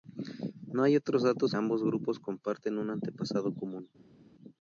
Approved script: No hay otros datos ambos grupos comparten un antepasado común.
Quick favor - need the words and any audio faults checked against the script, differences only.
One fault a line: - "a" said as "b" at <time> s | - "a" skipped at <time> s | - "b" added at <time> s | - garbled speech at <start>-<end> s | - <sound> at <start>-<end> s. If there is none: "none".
none